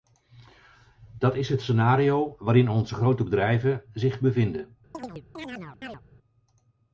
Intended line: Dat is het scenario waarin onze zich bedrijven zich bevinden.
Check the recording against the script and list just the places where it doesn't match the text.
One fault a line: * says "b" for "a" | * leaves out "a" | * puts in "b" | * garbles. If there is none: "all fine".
* says "grote" for "zich"